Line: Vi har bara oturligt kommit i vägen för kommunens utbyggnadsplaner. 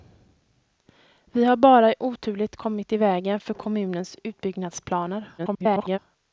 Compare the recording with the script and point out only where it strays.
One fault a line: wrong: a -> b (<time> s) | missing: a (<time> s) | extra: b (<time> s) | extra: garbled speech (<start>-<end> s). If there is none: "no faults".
extra: garbled speech (5.4-6.0 s)